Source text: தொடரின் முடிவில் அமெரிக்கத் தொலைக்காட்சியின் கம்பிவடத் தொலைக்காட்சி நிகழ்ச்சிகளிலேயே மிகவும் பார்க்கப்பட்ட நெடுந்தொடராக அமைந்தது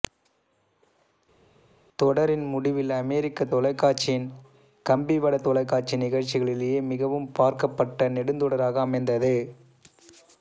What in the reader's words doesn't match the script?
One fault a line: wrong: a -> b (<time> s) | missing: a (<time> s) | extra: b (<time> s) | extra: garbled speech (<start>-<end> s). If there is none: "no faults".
no faults